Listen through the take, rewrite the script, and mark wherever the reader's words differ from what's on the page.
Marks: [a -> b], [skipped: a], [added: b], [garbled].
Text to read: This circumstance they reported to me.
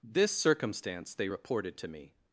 This circumstance they reported to me.